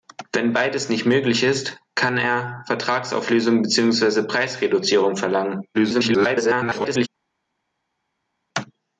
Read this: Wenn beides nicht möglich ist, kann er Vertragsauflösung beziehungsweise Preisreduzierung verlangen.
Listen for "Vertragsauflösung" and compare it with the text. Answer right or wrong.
right